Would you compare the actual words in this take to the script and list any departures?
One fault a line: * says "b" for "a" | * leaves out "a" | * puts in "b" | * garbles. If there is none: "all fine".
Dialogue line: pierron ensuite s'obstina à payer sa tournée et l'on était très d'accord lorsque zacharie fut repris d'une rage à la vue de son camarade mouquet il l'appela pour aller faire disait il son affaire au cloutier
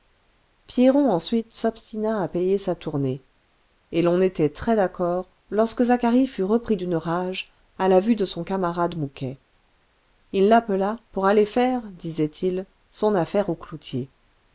all fine